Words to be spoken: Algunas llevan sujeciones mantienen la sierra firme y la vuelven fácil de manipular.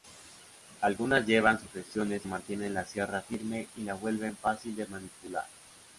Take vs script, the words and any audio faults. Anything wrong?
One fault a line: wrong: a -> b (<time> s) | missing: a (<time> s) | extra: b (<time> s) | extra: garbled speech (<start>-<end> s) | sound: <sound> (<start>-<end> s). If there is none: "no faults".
no faults